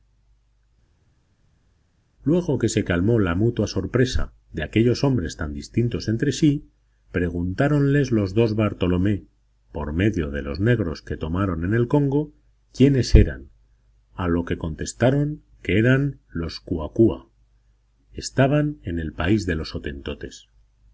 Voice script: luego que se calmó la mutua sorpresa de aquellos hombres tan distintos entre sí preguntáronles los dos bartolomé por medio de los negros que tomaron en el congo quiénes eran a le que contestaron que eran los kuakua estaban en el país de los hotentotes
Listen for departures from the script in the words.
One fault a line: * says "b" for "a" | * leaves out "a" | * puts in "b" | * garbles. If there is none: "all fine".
* says "lo" for "le"